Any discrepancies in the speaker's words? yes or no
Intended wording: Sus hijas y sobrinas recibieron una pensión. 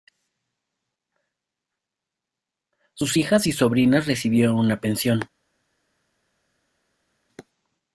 no